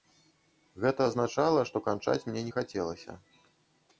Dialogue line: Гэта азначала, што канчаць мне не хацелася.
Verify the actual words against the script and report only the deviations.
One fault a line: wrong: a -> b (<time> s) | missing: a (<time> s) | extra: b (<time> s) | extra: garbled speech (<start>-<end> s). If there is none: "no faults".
no faults